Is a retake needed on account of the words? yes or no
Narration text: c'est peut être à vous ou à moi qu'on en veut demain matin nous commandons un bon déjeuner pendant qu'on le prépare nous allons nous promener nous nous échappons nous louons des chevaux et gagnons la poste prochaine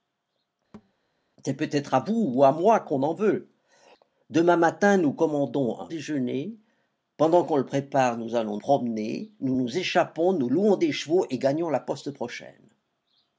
yes